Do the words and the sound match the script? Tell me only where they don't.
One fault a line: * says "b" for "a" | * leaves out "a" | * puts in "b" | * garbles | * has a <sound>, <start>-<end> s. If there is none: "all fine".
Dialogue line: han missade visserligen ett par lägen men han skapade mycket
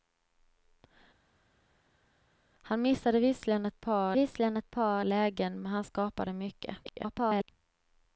* puts in "visserligen ett par"
* garbles